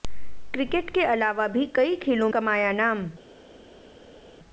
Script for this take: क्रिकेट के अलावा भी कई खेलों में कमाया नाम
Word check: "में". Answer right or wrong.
wrong